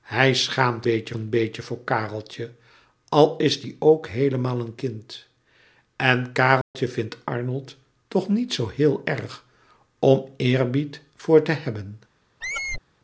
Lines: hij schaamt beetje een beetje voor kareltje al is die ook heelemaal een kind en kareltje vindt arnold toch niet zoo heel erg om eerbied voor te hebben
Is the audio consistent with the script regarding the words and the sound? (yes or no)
no